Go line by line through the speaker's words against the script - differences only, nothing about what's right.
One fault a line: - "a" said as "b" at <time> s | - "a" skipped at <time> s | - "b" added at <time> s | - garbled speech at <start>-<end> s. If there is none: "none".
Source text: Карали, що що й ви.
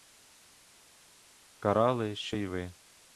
- "що" skipped at 2.4 s